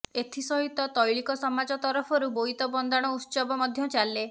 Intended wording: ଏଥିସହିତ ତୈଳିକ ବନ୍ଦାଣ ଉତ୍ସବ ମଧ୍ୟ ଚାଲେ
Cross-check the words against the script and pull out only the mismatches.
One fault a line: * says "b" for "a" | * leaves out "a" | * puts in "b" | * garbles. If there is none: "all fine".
* puts in "ସମାଜ ତରଫରୁ ବୋଇତ"